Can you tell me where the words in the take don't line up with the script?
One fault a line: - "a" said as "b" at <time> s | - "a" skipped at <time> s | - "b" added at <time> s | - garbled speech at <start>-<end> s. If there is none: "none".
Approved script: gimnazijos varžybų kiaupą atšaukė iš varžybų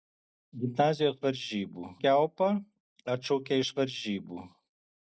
none